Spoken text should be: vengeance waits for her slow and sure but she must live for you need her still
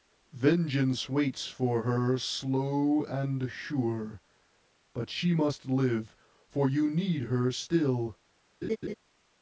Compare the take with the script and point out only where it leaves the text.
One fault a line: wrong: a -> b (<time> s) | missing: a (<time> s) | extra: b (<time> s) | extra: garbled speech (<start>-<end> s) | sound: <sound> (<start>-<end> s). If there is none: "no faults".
sound: laugh (8.6-8.9 s)